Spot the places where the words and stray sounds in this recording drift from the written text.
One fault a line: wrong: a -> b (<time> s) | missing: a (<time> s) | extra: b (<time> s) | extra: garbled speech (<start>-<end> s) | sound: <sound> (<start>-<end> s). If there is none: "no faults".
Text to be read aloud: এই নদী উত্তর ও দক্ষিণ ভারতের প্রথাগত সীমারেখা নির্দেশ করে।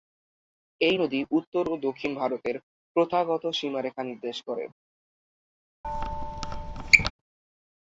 sound: squeak (5.8-7.1 s)